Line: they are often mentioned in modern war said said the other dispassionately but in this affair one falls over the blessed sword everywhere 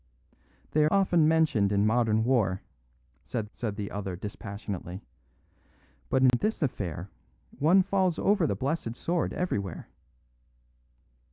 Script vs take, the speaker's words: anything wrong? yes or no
no